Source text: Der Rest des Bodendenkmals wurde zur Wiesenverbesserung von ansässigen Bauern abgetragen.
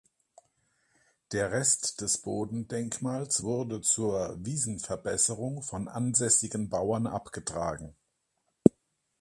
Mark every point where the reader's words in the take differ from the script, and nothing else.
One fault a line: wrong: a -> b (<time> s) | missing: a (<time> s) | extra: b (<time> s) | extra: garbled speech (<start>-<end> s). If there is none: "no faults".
no faults